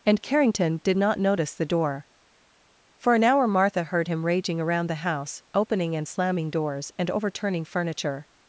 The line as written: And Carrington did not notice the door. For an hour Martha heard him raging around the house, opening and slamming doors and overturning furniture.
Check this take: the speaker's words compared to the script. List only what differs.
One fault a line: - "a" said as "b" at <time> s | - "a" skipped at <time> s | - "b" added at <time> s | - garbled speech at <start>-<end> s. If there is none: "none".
none